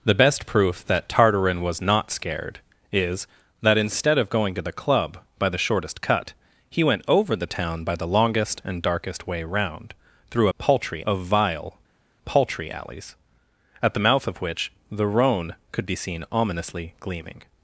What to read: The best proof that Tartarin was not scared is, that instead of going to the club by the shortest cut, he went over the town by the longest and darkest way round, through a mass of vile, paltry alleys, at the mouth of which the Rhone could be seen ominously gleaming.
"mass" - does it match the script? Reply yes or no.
no